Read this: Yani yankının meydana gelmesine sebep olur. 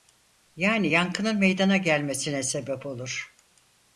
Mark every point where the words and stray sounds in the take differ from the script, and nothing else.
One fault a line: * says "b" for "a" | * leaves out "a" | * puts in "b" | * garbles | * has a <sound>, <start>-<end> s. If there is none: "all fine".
all fine